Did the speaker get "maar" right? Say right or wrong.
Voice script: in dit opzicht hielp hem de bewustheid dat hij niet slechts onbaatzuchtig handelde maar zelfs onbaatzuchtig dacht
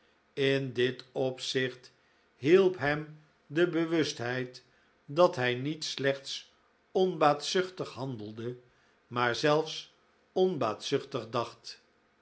right